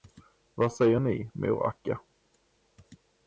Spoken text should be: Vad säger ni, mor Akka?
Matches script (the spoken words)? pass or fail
pass